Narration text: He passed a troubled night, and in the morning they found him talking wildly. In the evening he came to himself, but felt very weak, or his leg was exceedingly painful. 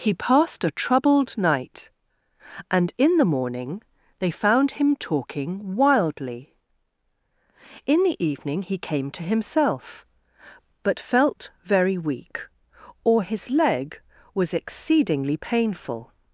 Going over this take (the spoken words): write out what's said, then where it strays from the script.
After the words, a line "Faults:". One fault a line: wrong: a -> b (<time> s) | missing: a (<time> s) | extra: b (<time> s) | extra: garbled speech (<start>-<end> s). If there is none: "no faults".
He passed a troubled night, and in the morning they found him talking wildly. In the evening he came to himself, but felt very weak, or his leg was exceedingly painful.
Faults:
no faults